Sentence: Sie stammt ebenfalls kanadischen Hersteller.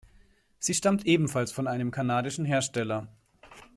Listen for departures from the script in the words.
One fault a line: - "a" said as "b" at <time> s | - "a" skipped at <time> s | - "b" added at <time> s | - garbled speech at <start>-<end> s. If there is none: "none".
- "von einem" added at 1.5 s